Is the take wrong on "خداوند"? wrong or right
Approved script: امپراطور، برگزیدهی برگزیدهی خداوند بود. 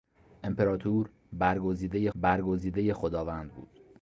right